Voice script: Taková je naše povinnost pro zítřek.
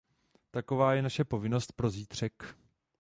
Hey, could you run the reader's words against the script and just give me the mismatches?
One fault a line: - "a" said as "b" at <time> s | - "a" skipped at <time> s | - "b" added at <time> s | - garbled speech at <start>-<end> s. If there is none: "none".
none